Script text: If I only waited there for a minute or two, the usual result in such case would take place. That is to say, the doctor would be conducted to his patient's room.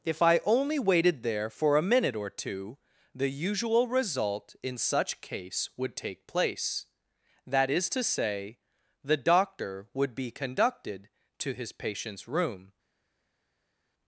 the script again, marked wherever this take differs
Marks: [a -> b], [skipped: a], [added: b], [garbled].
If I only waited there for a minute or two, the usual result in such case would take place. That is to say, the doctor would be conducted to his patient's room.